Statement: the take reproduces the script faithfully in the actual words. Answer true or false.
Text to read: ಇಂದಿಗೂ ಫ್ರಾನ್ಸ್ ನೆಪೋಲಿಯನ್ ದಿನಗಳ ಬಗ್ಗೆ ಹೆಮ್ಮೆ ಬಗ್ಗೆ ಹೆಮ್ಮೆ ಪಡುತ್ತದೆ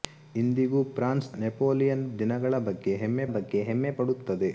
true